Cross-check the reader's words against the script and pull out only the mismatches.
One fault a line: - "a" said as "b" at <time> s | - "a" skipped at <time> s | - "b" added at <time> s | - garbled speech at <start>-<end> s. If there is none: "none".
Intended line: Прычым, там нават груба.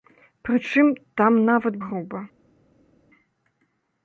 none